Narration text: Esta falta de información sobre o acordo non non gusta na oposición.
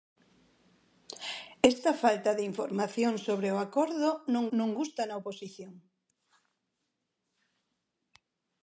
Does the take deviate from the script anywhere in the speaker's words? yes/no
no